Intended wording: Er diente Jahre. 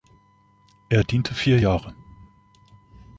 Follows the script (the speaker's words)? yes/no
no